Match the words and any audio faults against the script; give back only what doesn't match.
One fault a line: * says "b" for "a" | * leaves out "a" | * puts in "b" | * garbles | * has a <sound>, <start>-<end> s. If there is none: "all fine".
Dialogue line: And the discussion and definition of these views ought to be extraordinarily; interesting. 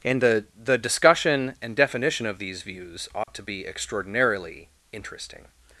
* puts in "the"
* has a dropout, 3.2-3.3 s